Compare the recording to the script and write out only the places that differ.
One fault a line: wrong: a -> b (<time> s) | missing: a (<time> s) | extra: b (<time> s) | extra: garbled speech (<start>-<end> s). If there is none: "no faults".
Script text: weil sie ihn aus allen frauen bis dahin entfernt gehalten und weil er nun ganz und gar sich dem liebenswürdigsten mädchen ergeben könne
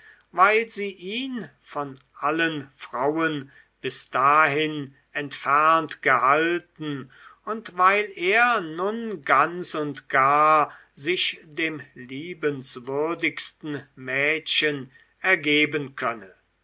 wrong: aus -> von (1.6 s)